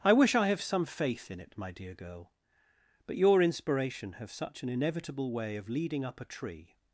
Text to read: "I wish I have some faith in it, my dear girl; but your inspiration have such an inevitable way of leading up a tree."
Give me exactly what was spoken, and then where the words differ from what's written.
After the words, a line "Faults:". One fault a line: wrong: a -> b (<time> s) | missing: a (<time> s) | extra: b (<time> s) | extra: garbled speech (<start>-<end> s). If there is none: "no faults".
"I wish I have some faith in it, my dear girl; but your inspiration have such an inevitable way of leading up a tree."
Faults:
no faults